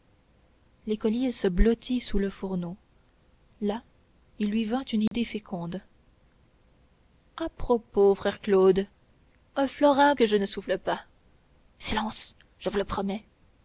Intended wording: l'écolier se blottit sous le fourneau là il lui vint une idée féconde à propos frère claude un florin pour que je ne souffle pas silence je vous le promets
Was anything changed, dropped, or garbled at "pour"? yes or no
yes